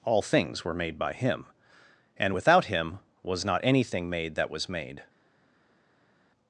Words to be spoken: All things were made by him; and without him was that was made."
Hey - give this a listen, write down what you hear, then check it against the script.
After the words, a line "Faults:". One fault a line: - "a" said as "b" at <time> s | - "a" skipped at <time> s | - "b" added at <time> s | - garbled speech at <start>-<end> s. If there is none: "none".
All things were made by him; and without him was not anything made that was made."
Faults:
- "not anything made" added at 3.4 s